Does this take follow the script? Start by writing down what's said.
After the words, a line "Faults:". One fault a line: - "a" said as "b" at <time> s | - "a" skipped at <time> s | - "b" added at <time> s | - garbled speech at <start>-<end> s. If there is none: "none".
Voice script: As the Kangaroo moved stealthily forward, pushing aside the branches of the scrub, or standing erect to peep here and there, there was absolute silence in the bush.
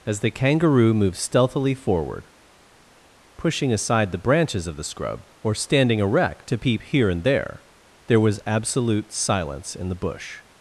As the Kangaroo moved stealthily forward, pushing aside the branches of the scrub, or standing erect to peep here and there, there was absolute silence in the bush.
Faults:
none